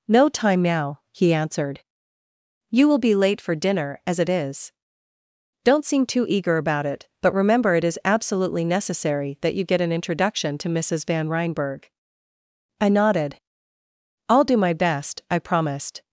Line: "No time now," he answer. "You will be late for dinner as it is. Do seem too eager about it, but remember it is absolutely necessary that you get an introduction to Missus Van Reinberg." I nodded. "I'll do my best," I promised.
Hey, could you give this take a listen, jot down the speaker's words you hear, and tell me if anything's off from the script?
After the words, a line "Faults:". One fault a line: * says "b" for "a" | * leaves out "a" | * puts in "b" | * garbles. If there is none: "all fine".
"No time now," he answered. "You will be late for dinner as it is. Don't seem too eager about it, but remember it is absolutely necessary that you get an introduction to Missus Van Reinberg." I nodded. "I'll do my best," I promised.
Faults:
* says "answered" for "answer"
* says "Don't" for "Do"